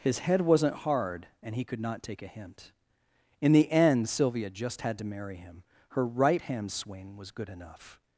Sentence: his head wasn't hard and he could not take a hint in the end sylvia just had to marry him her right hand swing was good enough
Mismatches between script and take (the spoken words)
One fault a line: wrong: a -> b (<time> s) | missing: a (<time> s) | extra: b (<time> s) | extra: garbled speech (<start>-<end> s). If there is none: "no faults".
no faults